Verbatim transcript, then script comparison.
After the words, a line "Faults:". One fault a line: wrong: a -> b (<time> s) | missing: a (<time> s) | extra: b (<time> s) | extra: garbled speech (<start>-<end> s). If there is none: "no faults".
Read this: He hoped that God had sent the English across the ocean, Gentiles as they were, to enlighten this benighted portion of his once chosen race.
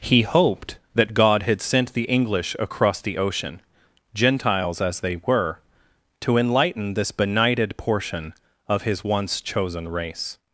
He hoped that God had sent the English across the ocean, Gentiles as they were, to enlighten this benighted portion of his once chosen race.
Faults:
no faults